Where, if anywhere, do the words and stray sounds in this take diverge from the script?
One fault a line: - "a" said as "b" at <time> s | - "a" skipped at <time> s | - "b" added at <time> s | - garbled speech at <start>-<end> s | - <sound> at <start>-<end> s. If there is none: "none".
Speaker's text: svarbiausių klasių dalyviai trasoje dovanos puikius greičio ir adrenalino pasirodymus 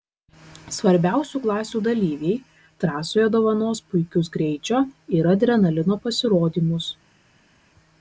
none